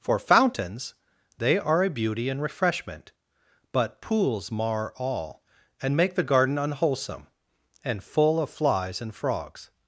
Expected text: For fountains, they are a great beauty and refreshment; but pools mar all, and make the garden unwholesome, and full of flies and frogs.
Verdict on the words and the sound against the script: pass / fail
fail